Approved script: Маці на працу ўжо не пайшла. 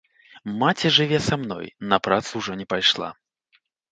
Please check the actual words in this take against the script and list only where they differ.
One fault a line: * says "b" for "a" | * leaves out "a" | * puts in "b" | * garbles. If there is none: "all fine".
* puts in "жыве са мной"